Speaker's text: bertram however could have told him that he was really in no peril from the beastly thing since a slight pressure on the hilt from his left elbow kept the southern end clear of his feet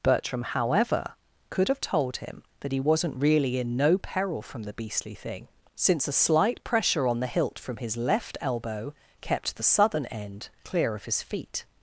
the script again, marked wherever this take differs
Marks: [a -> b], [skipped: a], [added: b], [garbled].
bertram however could have told him that he [was -> wasn't] really in no peril from the beastly thing since a slight pressure on the hilt from his left elbow kept the southern end clear of his feet